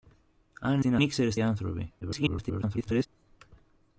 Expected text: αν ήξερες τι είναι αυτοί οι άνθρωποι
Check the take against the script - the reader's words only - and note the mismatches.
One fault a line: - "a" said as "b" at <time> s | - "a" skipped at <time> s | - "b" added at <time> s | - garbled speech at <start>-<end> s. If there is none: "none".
- "ήξερες" skipped at 0.8 s
- "αυτοί" said as "ήξερες" at 1.0 s
- garbled speech at 2.0-3.1 s